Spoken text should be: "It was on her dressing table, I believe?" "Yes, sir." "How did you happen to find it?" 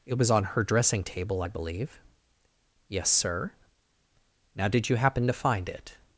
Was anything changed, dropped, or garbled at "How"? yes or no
yes